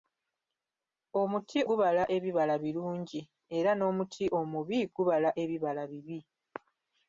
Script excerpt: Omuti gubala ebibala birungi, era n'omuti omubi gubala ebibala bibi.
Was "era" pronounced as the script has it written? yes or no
yes